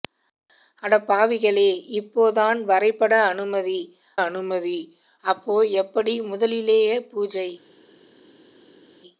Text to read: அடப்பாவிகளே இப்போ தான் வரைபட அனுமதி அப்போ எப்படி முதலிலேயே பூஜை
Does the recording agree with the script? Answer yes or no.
no